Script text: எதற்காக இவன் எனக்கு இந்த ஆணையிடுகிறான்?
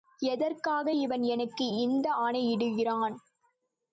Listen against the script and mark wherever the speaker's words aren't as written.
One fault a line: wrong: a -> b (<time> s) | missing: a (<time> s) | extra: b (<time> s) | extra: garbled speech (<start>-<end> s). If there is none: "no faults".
no faults